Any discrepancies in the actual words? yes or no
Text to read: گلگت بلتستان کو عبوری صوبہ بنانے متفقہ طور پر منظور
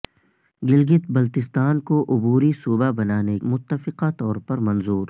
no